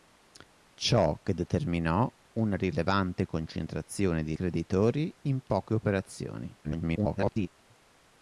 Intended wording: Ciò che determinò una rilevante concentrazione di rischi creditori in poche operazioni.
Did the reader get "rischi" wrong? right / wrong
wrong